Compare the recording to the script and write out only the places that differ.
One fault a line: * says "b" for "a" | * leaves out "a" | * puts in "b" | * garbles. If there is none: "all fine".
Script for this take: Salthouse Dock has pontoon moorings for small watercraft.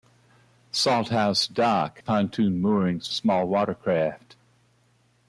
* leaves out "has"
* leaves out "for"